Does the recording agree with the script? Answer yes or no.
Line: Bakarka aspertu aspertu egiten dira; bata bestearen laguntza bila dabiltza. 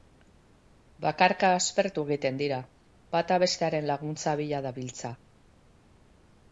no